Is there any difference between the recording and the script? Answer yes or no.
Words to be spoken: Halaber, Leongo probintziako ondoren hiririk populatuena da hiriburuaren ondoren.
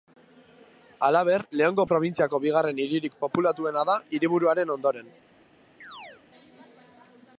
yes